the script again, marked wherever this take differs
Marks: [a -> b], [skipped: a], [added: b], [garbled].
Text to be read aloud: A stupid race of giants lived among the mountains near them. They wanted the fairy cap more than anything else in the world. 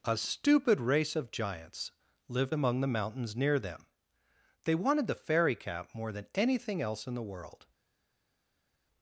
A stupid race of giants lived among the mountains near them. They wanted the fairy cap more than anything else in the world.